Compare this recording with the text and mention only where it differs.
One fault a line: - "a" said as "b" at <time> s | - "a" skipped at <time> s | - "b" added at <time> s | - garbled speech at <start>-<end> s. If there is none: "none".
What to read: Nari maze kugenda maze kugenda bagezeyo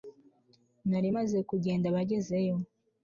- "maze kugenda" skipped at 1.9 s